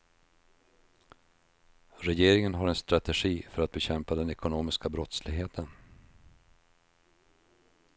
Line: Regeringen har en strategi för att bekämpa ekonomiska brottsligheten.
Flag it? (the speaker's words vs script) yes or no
yes